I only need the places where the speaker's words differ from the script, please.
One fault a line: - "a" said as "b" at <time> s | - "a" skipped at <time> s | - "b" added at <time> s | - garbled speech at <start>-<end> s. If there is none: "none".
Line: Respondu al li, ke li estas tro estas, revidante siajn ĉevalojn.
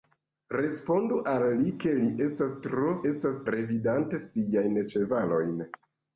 none